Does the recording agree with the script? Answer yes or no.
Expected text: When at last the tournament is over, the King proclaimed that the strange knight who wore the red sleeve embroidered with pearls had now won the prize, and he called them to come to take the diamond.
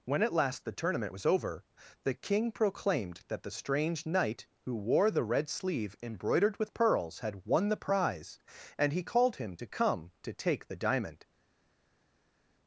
no